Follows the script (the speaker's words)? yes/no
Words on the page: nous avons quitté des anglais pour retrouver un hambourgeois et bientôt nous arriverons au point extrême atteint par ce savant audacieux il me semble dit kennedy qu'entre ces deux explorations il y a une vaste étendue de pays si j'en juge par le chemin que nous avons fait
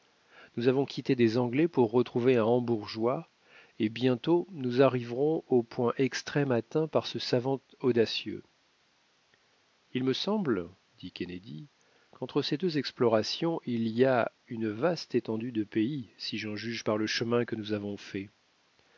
yes